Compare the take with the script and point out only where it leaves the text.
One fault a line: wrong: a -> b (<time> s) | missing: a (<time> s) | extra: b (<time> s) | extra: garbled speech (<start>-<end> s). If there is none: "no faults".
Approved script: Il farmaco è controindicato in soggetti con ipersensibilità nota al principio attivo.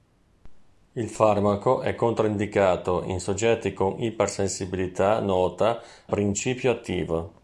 missing: al (5.8 s)